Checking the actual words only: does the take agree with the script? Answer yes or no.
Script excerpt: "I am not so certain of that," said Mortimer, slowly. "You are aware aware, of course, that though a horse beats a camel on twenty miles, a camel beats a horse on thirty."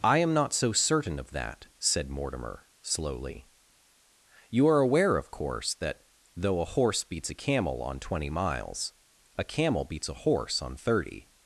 no